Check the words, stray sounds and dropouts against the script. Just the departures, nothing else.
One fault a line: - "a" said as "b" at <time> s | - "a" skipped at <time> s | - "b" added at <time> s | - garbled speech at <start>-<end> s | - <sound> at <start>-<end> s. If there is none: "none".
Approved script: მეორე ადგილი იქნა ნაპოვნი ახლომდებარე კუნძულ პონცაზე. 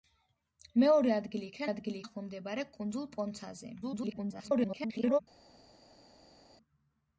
- "ნაპოვნი" said as "ადგილი" at 1.7 s
- garbled speech at 3.8-5.2 s